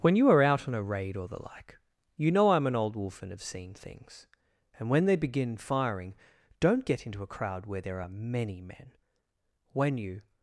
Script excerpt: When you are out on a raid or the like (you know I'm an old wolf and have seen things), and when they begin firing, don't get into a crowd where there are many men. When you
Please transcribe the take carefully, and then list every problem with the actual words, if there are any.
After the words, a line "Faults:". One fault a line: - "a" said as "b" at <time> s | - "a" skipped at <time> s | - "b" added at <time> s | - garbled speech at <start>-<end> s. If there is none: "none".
When you are out on a raid or the like (you know I'm an old wolf and have seen things), and when they begin firing, don't get into a crowd where there are many men. When you
Faults:
none